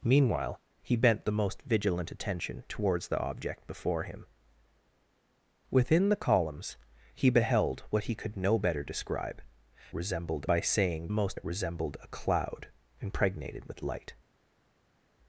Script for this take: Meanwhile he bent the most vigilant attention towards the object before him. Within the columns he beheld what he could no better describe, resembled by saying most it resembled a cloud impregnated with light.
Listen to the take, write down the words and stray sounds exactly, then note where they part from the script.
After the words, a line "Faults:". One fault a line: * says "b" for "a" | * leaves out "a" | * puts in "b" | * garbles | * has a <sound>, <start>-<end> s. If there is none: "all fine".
Meanwhile he bent the most vigilant attention towards the object before him. Within the columns he beheld what he could no better describe, resembled by saying most it resembled a cloud impregnated with light.
Faults:
all fine